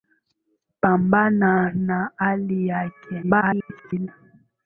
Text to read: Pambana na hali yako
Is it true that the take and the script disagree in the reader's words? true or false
true